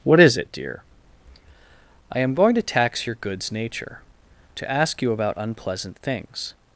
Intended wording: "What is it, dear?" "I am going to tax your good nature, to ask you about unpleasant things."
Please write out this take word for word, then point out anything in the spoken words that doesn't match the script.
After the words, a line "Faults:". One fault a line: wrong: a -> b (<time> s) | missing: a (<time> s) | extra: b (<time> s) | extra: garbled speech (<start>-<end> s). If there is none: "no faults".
"What is it, dear?" "I am going to tax your goods nature, to ask you about unpleasant things."
Faults:
wrong: good -> goods (3.1 s)